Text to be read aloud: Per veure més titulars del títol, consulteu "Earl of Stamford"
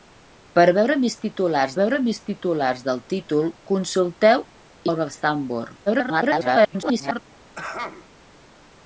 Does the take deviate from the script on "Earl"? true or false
true